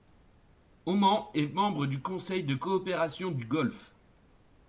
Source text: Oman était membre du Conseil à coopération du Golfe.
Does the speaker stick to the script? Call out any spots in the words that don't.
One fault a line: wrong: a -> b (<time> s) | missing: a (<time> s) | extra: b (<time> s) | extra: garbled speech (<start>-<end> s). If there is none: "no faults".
wrong: était -> est (1.4 s)
wrong: à -> de (2.4 s)